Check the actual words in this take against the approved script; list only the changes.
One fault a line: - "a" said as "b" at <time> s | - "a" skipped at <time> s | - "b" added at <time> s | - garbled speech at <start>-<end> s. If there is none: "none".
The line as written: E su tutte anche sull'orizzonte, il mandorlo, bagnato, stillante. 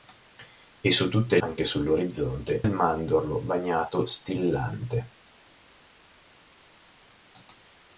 none